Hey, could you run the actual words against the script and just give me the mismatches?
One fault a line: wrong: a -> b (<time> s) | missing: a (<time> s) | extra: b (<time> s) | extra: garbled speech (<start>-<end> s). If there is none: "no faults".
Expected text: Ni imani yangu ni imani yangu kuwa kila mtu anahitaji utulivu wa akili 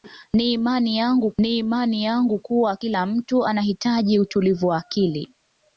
no faults